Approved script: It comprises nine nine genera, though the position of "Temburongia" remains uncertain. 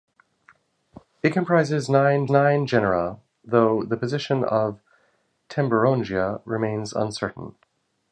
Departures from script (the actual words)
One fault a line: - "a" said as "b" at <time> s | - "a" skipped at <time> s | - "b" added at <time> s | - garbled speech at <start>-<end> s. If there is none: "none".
none